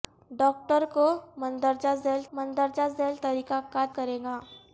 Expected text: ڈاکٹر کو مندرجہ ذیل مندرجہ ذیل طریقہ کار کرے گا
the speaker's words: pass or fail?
pass